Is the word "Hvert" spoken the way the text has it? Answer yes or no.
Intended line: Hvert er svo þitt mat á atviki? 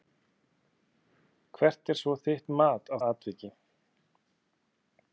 yes